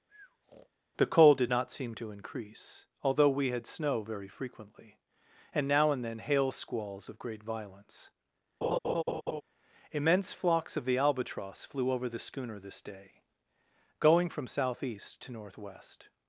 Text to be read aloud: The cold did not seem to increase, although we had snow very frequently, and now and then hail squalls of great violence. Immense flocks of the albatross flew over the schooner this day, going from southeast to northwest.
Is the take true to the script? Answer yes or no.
yes